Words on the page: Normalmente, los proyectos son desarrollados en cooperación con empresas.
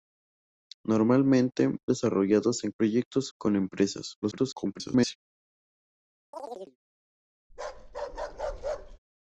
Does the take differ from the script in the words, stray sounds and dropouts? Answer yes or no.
yes